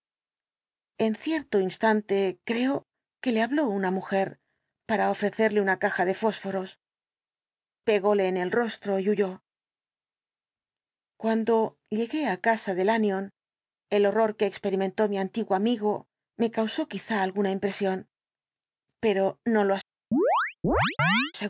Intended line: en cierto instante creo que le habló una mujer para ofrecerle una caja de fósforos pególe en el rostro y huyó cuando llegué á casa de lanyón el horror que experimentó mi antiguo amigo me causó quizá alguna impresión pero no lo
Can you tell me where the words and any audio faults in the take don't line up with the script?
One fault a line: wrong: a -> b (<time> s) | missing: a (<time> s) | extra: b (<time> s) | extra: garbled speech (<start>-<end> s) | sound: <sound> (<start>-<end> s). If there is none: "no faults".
sound: chirp (20.1-21.3 s)